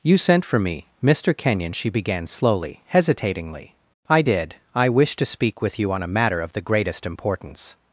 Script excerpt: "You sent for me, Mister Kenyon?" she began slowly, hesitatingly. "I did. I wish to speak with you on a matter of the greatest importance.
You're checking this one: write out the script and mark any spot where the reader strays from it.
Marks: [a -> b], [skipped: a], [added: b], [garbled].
"You sent for me, Mister Kenyon?" she began slowly, hesitatingly. "I did. I wish to speak with you on a matter of the greatest importance.